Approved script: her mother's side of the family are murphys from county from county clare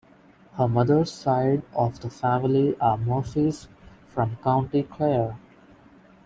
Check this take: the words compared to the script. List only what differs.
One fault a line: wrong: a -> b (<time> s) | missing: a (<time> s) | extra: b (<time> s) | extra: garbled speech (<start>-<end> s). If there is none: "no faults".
missing: from county (4.8 s)